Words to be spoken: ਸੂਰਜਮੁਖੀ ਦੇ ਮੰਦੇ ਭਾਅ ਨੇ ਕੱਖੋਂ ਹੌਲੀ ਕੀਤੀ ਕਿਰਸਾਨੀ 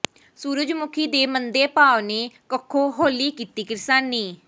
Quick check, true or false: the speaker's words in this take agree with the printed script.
true